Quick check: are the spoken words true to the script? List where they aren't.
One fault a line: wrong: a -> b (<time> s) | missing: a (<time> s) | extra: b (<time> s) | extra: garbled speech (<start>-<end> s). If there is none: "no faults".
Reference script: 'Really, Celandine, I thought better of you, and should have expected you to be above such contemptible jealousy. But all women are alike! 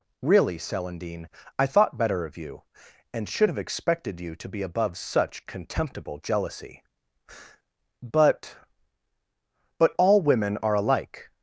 extra: But (9.8 s)